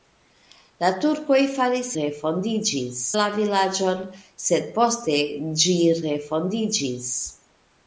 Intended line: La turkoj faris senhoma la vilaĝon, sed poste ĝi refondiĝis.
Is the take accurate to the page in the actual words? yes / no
no